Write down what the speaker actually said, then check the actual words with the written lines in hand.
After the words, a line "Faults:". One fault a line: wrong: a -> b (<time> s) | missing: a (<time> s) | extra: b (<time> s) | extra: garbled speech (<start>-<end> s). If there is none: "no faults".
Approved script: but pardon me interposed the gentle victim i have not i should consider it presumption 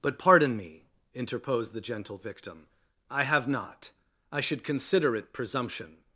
but pardon me interposed the gentle victim i have not i should consider it presumption
Faults:
no faults